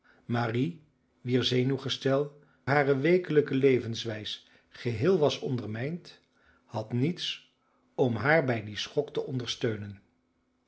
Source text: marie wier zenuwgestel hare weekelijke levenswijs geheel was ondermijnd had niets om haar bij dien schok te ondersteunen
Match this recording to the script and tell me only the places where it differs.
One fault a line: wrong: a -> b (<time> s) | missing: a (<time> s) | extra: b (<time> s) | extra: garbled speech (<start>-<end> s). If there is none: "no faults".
no faults